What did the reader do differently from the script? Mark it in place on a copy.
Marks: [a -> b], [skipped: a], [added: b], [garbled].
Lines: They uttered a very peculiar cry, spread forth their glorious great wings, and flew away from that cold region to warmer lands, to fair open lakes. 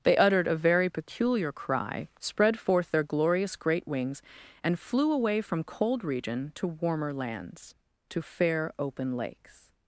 They uttered a very peculiar cry, spread forth their glorious great wings, and flew away from [skipped: that] cold region to warmer lands, to fair open lakes.